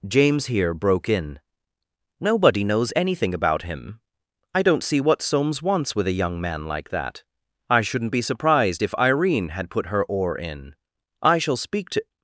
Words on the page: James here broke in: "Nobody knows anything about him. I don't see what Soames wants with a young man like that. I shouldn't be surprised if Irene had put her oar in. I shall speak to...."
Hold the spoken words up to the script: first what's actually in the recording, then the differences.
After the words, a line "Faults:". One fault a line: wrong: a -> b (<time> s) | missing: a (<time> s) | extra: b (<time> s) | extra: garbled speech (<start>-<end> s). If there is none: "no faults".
James here broke in: "Nobody knows anything about him. I don't see what Soames wants with a young man like that. I shouldn't be surprised if Irene had put her oar in. I shall speak to...."
Faults:
no faults